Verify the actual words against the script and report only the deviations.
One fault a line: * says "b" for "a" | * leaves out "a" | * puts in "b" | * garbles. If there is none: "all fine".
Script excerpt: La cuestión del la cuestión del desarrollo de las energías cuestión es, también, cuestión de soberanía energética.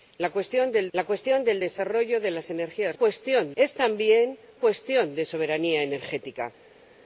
all fine